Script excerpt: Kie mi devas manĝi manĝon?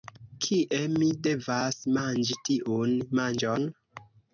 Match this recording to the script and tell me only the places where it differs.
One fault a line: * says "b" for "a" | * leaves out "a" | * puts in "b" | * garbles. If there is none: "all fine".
* puts in "tiun"